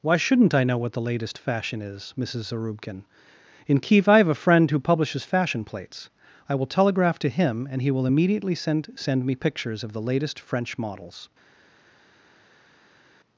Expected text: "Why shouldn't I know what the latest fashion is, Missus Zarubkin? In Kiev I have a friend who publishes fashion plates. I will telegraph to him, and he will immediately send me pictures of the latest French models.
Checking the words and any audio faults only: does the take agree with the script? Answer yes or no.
no